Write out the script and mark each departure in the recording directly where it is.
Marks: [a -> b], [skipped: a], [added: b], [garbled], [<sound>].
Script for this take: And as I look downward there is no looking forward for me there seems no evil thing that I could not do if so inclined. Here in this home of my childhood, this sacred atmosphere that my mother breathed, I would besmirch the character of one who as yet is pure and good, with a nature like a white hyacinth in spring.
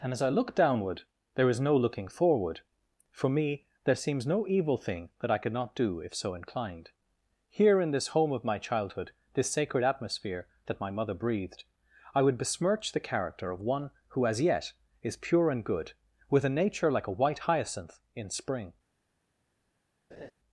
And as I look downward there is no looking forward for me there seems no evil thing that I could not do if so inclined. Here in this home of my childhood, this sacred atmosphere that my mother breathed, I would besmirch the character of one who as yet is pure and good, with a nature like a white hyacinth in spring. [laugh]